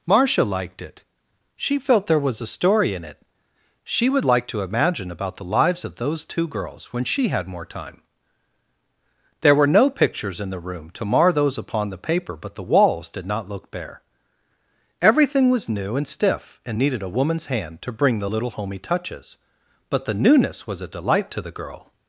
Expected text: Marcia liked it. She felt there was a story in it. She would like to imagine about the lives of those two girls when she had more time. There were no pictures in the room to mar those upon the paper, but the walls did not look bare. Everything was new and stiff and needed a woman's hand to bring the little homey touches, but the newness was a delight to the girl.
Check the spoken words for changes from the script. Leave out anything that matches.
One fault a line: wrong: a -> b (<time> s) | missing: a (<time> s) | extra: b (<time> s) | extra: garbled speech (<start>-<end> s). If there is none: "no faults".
no faults